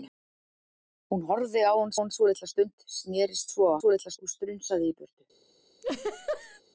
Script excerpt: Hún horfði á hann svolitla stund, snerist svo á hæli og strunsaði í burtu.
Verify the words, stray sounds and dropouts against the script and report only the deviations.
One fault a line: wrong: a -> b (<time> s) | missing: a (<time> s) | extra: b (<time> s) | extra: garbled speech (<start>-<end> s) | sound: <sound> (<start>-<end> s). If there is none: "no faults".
extra: hann (2.0 s)
wrong: hæli -> svolitla (3.8 s)
sound: laugh (5.8-6.6 s)